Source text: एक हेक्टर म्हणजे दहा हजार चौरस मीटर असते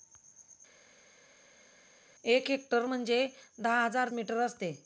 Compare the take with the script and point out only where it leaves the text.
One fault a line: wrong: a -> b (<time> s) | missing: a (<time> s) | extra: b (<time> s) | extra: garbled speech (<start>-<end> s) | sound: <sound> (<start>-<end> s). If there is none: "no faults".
missing: चौरस (4.1 s)